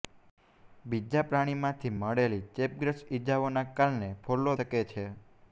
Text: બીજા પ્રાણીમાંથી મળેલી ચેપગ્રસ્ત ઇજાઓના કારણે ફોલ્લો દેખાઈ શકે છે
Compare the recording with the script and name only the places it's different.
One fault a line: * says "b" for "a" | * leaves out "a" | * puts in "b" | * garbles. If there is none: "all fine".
* leaves out "દેખાઈ"